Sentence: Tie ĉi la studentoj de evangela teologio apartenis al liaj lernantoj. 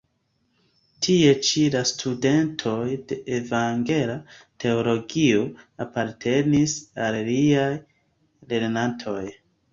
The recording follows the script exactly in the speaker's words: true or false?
true